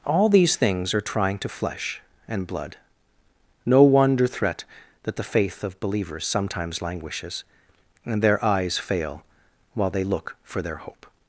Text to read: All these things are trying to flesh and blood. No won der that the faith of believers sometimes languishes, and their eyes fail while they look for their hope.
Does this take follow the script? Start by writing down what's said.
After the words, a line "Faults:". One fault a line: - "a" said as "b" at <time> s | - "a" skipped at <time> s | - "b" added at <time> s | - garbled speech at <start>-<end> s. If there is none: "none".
All these things are trying to flesh and blood. No wonder threat that the faith of believers sometimes languishes, and their eyes fail while they look for their hope.
Faults:
- "won der" said as "wonder threat" at 3.8 s